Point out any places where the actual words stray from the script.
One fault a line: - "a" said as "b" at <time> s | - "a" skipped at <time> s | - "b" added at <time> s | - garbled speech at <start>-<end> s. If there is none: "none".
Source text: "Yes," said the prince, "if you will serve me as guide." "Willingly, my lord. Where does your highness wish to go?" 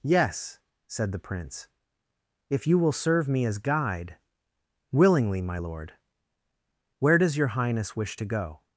none